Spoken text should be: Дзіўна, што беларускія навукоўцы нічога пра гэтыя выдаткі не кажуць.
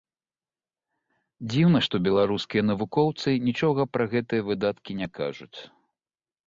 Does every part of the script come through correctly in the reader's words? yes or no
yes